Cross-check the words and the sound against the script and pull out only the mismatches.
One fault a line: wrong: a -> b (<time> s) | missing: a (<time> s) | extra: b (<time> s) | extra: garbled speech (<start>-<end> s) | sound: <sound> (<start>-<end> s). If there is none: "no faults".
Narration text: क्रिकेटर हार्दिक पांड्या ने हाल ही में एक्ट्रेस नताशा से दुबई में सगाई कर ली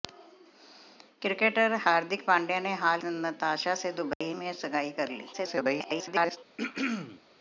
missing: ही में एक्ट्रेस (3.0 s)
sound: dropout (4.1-4.2 s)
extra: garbled speech (5.3-6.4 s)
sound: throat clearing (6.6-7.2 s)